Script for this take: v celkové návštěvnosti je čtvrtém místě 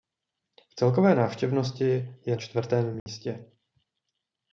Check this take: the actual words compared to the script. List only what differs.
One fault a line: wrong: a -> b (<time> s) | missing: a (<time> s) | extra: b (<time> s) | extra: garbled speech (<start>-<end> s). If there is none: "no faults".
no faults